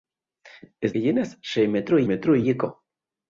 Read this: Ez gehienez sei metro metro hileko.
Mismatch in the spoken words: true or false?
false